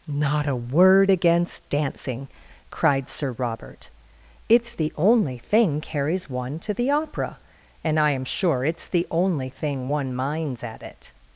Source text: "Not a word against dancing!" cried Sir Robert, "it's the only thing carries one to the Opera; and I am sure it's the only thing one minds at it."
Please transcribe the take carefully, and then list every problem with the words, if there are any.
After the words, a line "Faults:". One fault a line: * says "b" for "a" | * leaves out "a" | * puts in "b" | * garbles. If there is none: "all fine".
"Not a word against dancing!" cried Sir Robert, "it's the only thing carries one to the Opera; and I am sure it's the only thing one minds at it."
Faults:
all fine